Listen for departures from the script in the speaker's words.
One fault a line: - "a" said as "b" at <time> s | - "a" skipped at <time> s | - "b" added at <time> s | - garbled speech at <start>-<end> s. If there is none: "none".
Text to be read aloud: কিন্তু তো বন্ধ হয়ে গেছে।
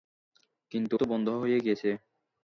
none